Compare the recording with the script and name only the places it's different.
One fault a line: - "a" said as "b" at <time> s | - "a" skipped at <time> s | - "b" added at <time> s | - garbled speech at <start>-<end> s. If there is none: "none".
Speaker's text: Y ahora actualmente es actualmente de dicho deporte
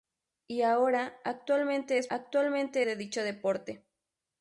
none